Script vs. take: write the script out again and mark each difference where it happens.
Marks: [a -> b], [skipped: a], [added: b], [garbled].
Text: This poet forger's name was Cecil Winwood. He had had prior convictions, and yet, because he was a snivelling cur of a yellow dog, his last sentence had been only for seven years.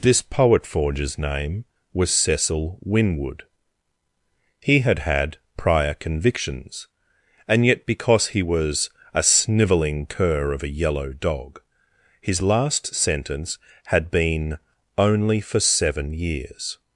This poet forger's name was Cecil Winwood. He had had prior convictions, and yet, because he was a snivelling cur of a yellow dog, his last sentence had been only for seven years.